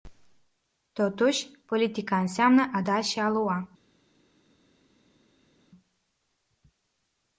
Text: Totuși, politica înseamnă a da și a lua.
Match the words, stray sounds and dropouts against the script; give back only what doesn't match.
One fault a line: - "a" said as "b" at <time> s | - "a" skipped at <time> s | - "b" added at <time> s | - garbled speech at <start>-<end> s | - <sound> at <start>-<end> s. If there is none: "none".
none